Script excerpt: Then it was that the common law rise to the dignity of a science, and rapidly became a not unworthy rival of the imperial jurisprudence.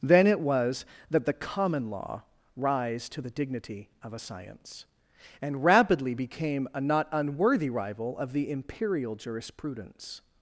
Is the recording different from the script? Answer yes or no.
no